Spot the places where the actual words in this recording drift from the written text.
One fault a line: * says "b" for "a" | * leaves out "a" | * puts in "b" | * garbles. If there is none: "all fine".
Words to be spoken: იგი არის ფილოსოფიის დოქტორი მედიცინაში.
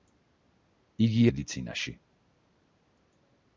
* leaves out "არის ფილოსოფიის დოქტორი"